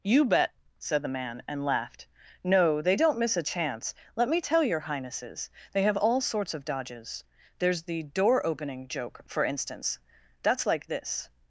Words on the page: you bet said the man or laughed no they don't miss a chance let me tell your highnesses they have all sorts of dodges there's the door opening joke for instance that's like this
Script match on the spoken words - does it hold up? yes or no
no